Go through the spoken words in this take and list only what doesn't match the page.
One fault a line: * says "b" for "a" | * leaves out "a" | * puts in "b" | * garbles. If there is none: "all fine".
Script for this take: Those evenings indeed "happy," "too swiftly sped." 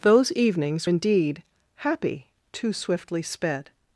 all fine